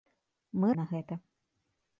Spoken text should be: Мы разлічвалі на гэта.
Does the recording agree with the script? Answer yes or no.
no